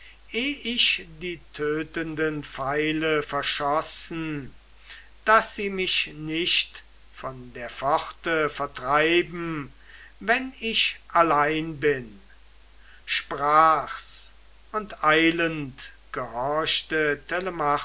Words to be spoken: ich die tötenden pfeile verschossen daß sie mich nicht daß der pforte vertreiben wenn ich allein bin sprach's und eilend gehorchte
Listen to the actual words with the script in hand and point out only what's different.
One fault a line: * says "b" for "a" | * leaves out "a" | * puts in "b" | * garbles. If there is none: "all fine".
* says "von" for "daß"